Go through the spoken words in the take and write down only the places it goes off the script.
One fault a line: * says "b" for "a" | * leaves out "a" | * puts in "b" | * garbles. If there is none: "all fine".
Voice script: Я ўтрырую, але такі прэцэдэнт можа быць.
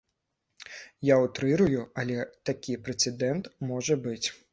all fine